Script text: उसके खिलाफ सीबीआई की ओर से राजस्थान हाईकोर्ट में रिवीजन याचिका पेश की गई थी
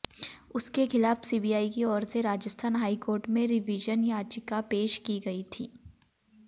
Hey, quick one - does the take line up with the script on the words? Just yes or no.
yes